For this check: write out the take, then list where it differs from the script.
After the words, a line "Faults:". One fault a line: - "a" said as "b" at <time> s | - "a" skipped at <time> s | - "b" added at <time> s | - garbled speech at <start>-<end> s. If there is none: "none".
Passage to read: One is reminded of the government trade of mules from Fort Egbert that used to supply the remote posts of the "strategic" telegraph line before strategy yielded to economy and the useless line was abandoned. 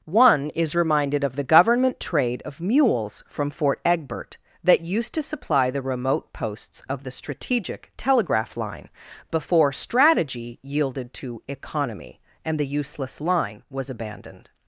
One is reminded of the government trade of mules from Fort Egbert that used to supply the remote posts of the "strategic" telegraph line before strategy yielded to economy and the useless line was abandoned.
Faults:
none